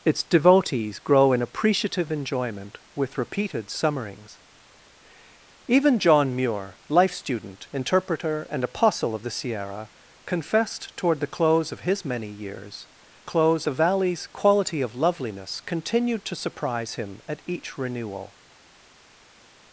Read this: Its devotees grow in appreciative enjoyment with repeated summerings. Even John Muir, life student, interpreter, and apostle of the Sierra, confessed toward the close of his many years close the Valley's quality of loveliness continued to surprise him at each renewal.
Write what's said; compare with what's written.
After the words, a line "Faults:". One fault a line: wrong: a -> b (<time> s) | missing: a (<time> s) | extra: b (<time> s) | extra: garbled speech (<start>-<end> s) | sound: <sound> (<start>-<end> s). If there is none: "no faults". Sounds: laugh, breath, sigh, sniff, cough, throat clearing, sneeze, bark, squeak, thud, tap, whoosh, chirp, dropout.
Its devotees grow in appreciative enjoyment with repeated summerings. Even John Muir, life student, interpreter, and apostle of the Sierra, confessed toward the close of his many years close the Valley's quality of loveliness continued to surprise him at each renewal.
Faults:
no faults